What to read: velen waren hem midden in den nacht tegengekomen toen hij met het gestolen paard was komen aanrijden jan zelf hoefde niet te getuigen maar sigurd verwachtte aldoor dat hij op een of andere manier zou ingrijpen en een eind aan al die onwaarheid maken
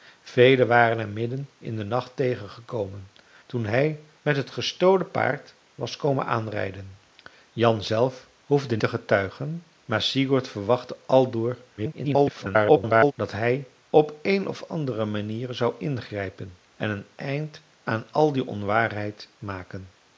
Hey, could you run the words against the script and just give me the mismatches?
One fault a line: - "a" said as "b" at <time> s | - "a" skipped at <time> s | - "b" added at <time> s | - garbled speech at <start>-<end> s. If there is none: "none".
- "niet" skipped at 8.8 s
- garbled speech at 11.8-13.1 s